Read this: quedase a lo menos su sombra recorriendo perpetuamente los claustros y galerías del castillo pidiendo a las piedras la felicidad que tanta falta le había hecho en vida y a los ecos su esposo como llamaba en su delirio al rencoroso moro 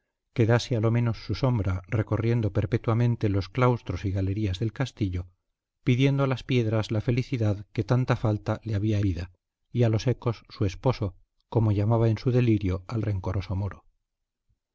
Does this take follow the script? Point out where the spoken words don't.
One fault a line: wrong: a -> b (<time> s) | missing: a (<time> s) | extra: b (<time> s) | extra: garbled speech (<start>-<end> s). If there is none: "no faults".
missing: hecho en (9.0 s)